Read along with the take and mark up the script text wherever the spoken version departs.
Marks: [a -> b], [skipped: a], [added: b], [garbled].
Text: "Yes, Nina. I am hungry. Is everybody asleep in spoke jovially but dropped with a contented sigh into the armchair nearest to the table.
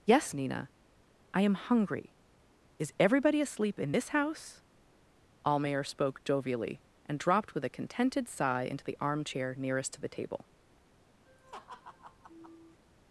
"Yes, Nina. I am hungry. Is everybody asleep in [added: this house Almayer] spoke jovially [but -> and] dropped with a contented sigh into the armchair nearest to the table.